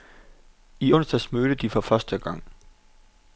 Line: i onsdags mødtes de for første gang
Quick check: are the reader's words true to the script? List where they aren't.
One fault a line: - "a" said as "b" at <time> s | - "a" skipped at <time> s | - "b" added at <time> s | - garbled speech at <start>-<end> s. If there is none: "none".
none